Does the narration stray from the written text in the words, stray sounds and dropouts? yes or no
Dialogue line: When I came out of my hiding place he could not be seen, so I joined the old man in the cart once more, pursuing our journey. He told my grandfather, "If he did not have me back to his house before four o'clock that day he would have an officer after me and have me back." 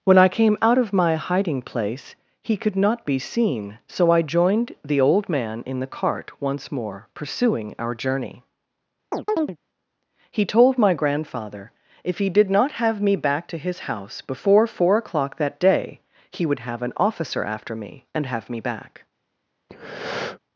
yes